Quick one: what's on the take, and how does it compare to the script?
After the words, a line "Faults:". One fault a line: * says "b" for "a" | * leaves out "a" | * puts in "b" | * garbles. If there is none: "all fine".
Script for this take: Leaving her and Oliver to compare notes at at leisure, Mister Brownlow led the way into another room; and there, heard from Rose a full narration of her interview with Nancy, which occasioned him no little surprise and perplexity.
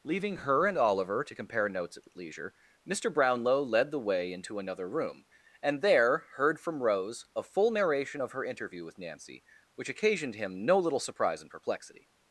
Leaving her and Oliver to compare notes at at leisure, Mister Brownlow led the way into another room; and there, heard from Rose a full narration of her interview with Nancy, which occasioned him no little surprise and perplexity.
Faults:
all fine